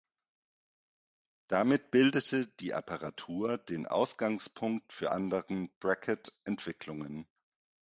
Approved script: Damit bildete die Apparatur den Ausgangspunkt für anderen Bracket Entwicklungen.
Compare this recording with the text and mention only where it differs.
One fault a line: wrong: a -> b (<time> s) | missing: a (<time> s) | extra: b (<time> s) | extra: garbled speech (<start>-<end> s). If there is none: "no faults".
no faults